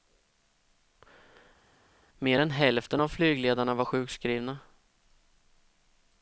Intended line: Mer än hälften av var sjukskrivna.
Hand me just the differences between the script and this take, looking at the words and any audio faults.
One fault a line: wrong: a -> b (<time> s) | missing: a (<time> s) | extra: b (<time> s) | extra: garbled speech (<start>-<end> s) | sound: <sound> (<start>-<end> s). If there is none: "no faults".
extra: flygledarna (3.1 s)